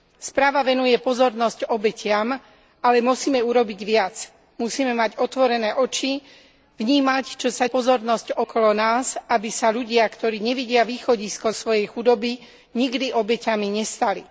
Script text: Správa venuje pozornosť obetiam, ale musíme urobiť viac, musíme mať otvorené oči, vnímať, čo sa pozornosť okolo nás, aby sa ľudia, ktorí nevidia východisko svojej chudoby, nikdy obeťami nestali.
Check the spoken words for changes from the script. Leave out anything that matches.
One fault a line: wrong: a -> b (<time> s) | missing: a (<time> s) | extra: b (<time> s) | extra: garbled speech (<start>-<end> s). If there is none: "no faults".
no faults